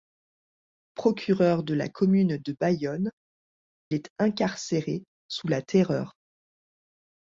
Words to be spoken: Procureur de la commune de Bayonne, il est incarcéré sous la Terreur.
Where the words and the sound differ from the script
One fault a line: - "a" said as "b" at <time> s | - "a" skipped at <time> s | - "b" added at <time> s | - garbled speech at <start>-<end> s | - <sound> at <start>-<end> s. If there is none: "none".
- "il" skipped at 3.1 s